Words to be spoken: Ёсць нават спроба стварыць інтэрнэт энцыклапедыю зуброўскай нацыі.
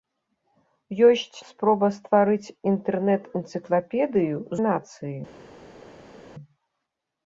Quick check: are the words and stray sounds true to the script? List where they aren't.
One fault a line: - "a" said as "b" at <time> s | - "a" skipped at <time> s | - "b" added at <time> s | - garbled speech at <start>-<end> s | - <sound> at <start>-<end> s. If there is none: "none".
- "нават" skipped at 1.4 s
- "зуброўскай" skipped at 4.4 s